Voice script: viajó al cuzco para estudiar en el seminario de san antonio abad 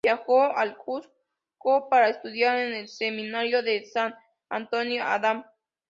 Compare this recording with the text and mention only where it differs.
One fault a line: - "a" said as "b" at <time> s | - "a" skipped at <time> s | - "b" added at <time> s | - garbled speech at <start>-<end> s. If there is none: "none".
none